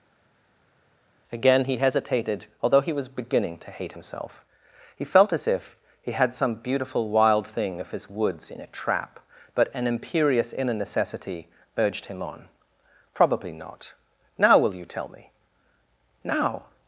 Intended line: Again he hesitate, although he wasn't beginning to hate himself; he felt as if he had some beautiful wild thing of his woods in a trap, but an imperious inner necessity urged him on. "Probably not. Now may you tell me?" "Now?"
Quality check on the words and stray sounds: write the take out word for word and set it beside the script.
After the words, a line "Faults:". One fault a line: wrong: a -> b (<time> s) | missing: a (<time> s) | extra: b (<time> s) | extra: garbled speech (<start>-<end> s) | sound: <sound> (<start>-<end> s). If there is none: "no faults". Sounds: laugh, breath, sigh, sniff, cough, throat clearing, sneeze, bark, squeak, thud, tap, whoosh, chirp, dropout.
Again he hesitated, although he was beginning to hate himself; he felt as if he had some beautiful wild thing of his woods in a trap, but an imperious inner necessity urged him on. "Probably not. Now will you tell me?" "Now?"
Faults:
wrong: hesitate -> hesitated (1.8 s)
wrong: wasn't -> was (2.9 s)
wrong: may -> will (14.6 s)